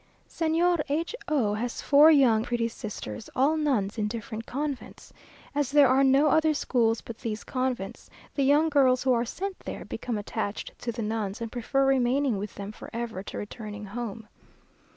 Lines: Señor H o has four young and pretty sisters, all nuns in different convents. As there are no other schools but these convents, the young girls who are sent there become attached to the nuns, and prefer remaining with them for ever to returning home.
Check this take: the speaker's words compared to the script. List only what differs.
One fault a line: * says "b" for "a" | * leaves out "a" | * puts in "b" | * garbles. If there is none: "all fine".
* leaves out "and"